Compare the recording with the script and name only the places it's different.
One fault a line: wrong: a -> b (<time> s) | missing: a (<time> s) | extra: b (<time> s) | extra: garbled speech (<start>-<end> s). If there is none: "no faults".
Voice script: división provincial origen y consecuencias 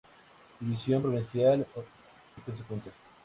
missing: origen (1.7 s)